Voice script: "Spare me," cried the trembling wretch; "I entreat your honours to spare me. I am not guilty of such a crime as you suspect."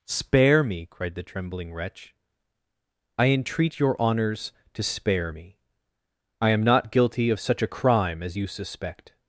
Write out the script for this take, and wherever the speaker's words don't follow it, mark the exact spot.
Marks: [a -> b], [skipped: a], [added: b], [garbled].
"Spare me," cried the trembling wretch; "I entreat your honours to spare me. I am not guilty of such a crime as you suspect."